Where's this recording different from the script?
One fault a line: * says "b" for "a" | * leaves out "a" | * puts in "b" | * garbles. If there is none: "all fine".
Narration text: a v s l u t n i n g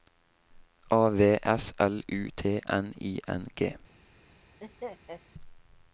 all fine